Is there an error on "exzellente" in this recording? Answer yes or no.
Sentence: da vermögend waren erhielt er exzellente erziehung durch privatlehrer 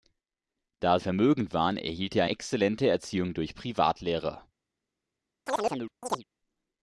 no